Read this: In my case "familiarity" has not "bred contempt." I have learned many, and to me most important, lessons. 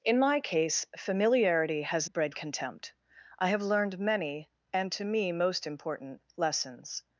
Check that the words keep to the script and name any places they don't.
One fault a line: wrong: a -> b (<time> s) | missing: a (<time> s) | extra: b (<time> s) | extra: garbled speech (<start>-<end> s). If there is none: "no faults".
missing: not (2.1 s)